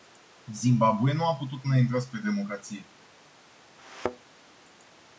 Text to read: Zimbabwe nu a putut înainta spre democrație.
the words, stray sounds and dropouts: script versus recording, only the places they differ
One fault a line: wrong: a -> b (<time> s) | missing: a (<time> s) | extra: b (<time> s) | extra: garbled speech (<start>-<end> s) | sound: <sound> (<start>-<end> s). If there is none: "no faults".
sound: thud (3.8-4.3 s)